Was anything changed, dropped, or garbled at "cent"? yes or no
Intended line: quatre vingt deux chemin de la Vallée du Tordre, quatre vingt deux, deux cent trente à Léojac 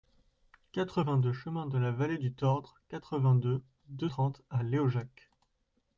yes